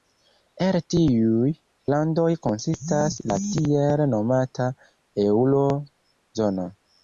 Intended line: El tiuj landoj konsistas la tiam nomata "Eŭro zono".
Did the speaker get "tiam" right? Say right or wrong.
wrong